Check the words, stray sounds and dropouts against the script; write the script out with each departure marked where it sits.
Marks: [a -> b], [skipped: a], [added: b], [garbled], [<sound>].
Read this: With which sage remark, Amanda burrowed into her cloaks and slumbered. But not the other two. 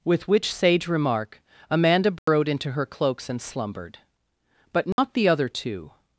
With which sage remark, Amanda burrowed [dropout] into her cloaks and slumbered. But not [dropout] the other two.